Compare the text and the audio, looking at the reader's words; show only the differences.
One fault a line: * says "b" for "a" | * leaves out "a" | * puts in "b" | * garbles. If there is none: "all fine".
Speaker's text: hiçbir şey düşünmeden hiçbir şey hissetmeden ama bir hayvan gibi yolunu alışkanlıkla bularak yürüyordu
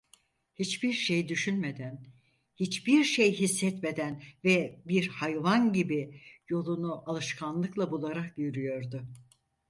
* says "ve" for "ama"